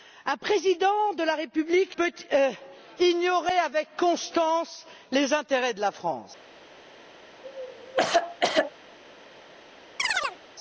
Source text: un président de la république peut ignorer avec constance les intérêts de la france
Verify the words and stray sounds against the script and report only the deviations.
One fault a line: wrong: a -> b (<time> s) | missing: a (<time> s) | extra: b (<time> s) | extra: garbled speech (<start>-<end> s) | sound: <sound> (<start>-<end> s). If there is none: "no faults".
sound: cough (7.4-8.7 s)
sound: chirp (10.0-10.4 s)